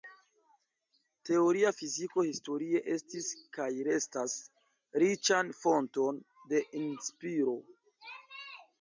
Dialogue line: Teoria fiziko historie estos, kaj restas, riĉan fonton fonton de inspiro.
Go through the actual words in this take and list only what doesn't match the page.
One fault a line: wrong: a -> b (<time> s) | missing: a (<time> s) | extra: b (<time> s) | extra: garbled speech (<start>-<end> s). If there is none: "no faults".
wrong: estos -> estis (3.0 s)
missing: fonton (6.2 s)